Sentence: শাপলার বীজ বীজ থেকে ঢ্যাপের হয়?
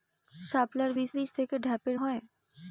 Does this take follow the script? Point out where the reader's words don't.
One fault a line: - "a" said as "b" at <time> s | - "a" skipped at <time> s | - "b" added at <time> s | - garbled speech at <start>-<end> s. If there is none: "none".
none